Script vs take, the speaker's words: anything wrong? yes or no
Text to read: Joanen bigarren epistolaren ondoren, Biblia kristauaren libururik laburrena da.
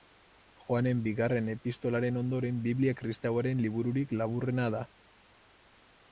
no